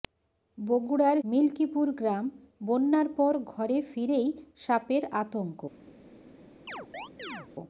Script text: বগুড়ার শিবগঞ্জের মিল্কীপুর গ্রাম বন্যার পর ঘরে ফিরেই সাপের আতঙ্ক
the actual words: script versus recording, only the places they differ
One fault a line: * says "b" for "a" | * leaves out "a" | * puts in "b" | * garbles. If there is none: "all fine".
* leaves out "শিবগঞ্জের"